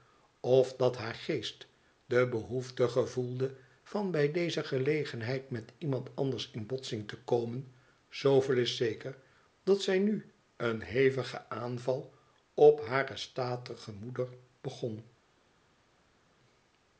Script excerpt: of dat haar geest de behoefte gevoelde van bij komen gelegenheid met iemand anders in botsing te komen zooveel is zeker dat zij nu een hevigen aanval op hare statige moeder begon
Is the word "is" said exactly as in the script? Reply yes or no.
yes